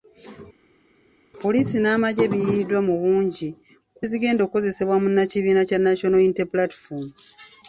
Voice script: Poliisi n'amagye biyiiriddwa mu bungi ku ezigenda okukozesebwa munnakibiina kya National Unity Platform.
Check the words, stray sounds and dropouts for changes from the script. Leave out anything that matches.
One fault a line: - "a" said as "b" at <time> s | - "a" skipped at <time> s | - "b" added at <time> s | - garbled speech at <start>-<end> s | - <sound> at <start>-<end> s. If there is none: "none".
none